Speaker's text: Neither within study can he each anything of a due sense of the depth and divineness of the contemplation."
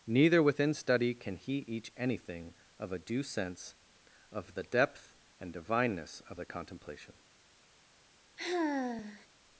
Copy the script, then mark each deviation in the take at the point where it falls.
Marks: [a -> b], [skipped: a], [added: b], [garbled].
Neither within study can he each anything of a due sense of the depth and divineness of the contemplation."